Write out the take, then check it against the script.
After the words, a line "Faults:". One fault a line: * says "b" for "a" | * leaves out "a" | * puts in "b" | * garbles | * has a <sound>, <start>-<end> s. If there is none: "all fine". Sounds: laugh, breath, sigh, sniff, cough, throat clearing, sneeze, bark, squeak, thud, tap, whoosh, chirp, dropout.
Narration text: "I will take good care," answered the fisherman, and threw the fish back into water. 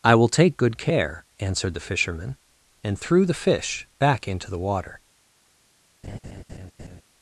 "I will take good care," answered the fisherman, and threw the fish back into the water.
Faults:
* puts in "the"
* has a laugh, 6.0-7.0 s